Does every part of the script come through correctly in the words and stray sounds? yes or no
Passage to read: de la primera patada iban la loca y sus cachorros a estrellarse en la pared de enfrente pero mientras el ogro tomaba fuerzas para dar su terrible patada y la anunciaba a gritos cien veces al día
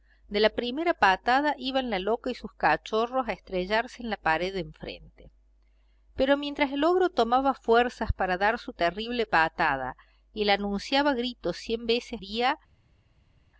no